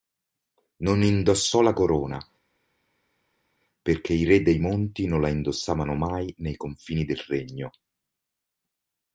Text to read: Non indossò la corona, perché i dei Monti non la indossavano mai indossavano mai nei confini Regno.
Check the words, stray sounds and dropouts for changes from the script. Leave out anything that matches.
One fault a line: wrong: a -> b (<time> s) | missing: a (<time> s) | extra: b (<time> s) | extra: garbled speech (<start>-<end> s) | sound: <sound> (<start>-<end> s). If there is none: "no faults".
extra: re (4.3 s)
missing: indossavano mai (6.3 s)
extra: del (7.0 s)